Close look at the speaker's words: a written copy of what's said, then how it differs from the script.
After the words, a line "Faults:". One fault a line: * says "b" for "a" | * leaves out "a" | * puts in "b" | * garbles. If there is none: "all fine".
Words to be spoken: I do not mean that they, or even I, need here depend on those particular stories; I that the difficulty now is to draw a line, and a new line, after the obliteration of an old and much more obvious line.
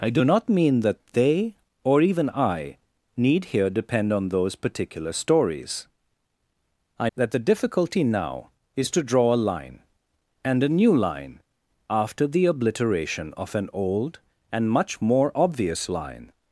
I do not mean that they, or even I, need here depend on those particular stories; I that the difficulty now is to draw a line, and a new line, after the obliteration of an old and much more obvious line.
Faults:
all fine